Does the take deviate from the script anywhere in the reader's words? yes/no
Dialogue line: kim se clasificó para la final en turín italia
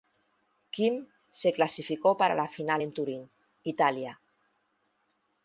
no